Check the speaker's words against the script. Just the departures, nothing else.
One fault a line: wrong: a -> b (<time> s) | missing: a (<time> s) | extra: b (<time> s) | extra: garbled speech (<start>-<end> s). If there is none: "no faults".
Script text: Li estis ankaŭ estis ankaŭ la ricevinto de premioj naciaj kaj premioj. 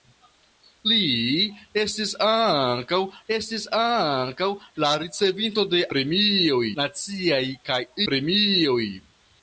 no faults